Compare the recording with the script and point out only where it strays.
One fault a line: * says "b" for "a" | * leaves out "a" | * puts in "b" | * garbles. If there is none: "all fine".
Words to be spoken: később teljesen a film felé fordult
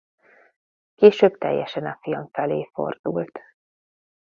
all fine